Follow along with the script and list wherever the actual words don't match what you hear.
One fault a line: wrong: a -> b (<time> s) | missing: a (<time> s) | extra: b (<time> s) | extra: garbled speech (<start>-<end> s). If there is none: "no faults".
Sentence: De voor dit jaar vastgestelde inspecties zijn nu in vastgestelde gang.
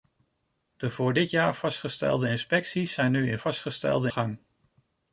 no faults